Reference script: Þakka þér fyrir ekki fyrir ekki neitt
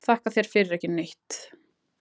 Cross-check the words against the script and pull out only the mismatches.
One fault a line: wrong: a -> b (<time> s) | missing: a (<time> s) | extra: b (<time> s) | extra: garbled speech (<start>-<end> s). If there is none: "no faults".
missing: fyrir ekki (0.9 s)